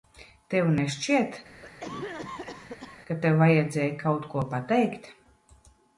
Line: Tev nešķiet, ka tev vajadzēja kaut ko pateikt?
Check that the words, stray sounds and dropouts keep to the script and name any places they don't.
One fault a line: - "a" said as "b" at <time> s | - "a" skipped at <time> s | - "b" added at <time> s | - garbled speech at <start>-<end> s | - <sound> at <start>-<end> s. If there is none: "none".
- cough at 1.6-3.0 s